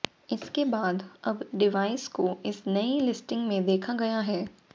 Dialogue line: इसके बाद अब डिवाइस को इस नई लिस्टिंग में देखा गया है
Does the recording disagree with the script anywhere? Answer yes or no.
no